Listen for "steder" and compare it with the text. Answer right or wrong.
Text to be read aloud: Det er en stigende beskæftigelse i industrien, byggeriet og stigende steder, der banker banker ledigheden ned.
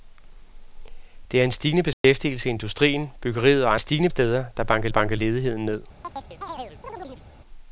right